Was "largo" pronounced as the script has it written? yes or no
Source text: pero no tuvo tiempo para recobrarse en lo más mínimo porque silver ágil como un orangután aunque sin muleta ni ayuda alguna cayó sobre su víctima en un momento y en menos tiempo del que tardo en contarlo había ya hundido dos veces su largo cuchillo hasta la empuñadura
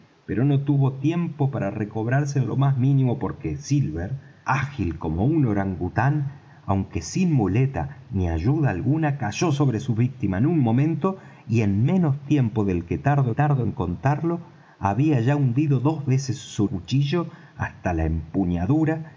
no